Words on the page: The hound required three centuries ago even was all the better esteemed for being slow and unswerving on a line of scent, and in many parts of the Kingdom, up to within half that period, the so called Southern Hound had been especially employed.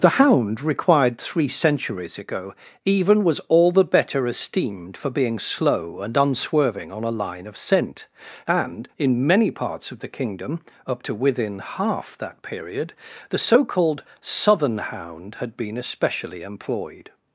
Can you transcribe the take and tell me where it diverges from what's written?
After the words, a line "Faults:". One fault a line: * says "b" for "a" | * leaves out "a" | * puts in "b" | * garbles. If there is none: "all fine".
The hound required three centuries ago even was all the better esteemed for being slow and unswerving on a line of scent, and in many parts of the Kingdom, up to within half that period, the so called Southern Hound had been especially employed.
Faults:
all fine